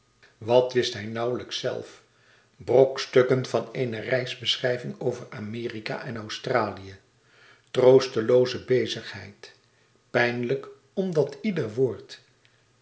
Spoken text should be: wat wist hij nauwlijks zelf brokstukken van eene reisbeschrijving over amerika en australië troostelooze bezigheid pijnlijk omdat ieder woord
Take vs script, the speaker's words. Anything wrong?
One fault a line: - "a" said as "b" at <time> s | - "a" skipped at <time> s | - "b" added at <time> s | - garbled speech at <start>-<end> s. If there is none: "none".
none